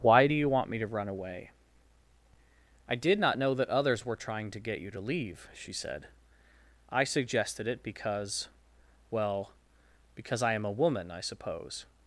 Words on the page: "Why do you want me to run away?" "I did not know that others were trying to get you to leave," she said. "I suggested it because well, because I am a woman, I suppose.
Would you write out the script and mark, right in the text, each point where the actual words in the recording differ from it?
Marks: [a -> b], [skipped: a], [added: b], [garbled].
"Why do you want me to run away?" "I did not know that others were trying to get you to leave," she said. "I suggested it because well, because I am a woman, I suppose.